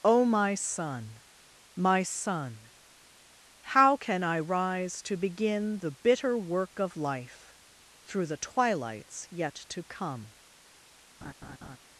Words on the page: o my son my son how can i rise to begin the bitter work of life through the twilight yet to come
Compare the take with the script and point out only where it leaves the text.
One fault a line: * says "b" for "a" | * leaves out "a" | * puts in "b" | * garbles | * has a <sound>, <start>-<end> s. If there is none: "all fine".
* says "twilights" for "twilight"
* has a laugh, 11.2-11.8 s